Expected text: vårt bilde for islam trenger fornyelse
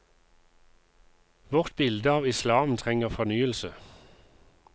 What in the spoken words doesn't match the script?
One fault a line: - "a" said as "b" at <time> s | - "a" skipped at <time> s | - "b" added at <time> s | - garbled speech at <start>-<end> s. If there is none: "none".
- "for" said as "av" at 2.1 s